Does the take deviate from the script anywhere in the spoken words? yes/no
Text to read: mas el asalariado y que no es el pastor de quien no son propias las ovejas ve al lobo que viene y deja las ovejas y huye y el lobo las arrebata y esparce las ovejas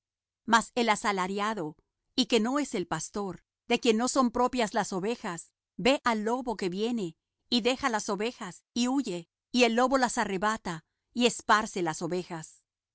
no